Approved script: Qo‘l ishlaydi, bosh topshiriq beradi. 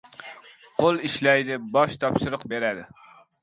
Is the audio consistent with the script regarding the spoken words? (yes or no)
yes